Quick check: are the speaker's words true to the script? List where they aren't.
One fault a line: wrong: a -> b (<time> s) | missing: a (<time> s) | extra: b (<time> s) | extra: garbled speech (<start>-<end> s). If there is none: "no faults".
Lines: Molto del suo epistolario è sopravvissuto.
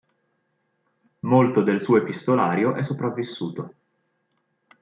no faults